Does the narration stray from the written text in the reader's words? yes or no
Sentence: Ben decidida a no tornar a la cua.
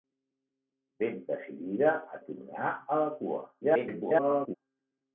yes